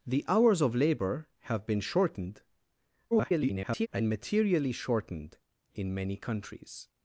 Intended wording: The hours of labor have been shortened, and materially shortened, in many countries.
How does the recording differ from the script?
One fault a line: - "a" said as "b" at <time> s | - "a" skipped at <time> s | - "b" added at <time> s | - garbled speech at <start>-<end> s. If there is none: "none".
- garbled speech at 3.1-3.9 s